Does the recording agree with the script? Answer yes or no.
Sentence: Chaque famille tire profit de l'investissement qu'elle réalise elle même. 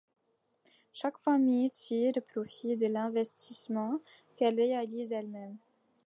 yes